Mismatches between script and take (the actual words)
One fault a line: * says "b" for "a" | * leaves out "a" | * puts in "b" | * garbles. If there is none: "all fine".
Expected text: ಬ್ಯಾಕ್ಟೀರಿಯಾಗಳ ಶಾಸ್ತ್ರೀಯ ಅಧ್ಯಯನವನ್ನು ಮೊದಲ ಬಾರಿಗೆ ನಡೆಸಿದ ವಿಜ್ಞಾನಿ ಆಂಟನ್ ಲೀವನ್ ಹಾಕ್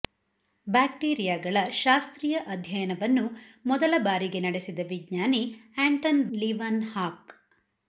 all fine